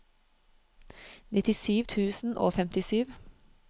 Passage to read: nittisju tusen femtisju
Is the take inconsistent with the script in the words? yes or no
yes